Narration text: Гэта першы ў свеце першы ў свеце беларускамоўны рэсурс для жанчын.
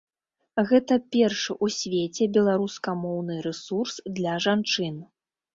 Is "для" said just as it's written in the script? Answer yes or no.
yes